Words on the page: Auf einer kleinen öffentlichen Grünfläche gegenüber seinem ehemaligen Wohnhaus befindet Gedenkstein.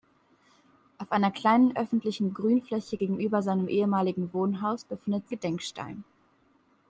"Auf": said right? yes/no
yes